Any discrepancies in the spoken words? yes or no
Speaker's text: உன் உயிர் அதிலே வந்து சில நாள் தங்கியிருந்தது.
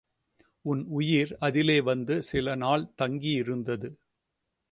no